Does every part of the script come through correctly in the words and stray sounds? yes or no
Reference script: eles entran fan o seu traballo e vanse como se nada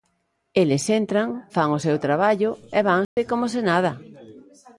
no